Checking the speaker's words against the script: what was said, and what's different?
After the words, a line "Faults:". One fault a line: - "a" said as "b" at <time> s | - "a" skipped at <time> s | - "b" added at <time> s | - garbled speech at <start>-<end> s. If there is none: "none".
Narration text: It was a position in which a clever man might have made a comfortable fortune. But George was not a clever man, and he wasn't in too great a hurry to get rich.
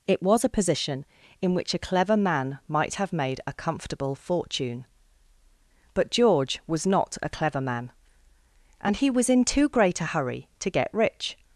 It was a position in which a clever man might have made a comfortable fortune. But George was not a clever man, and he was in too great a hurry to get rich.
Faults:
- "wasn't" said as "was" at 9.1 s